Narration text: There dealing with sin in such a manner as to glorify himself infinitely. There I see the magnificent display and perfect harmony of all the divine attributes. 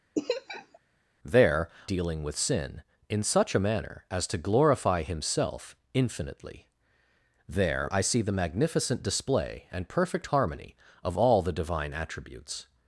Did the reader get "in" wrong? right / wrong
right